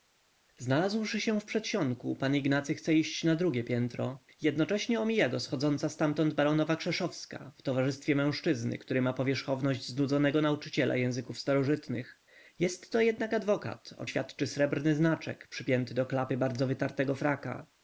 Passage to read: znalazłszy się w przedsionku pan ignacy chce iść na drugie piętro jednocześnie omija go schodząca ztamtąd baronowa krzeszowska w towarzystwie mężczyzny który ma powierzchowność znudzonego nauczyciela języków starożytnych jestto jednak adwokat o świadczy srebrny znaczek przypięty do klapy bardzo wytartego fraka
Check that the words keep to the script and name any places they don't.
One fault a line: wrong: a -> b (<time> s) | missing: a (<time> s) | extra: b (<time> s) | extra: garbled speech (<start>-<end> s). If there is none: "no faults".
no faults